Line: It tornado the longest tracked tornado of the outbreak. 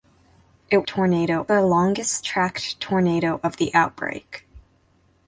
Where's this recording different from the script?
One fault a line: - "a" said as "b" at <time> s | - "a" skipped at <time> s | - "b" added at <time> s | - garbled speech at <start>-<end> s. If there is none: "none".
none